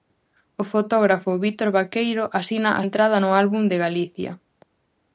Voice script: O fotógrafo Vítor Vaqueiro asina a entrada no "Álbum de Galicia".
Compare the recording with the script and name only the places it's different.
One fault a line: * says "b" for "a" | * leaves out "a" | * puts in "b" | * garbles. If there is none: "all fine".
all fine